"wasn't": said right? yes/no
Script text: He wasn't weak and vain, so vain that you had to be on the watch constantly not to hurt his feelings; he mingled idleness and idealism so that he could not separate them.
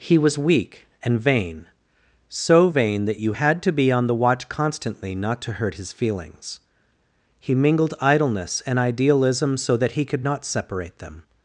no